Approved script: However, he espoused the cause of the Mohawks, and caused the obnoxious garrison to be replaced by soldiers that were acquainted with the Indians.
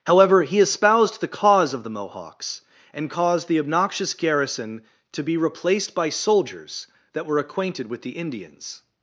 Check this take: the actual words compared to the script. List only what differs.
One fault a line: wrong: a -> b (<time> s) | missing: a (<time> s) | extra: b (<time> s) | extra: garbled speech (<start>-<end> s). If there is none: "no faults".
no faults